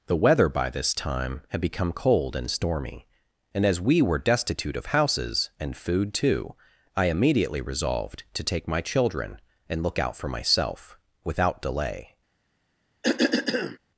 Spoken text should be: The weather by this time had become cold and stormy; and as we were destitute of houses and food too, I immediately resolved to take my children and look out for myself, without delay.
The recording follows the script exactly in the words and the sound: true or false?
false